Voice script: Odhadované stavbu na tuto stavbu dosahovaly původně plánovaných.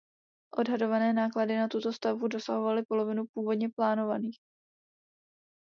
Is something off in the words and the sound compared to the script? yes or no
yes